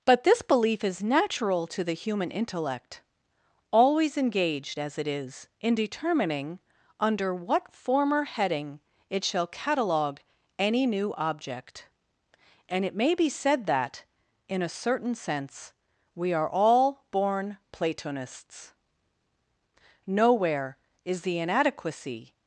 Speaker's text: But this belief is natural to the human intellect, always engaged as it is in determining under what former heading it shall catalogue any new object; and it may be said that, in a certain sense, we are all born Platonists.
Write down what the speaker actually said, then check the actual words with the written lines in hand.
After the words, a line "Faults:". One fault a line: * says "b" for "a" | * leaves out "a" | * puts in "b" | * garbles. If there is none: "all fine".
But this belief is natural to the human intellect, always engaged as it is in determining under what former heading it shall catalogue any new object; and it may be said that, in a certain sense, we are all born Platonists. Nowhere is the inadequacy
Faults:
* puts in "Nowhere is the inadequacy"